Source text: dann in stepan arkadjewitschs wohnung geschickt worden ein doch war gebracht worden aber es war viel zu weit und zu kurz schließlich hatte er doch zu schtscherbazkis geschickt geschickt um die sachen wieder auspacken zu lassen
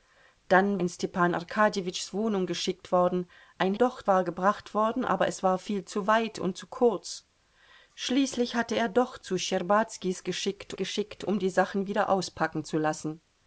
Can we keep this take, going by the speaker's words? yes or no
yes